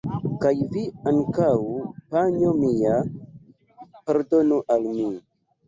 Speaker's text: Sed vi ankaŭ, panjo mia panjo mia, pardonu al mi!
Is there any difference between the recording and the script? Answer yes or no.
yes